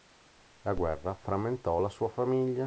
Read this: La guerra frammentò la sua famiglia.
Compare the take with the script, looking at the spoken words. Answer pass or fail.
pass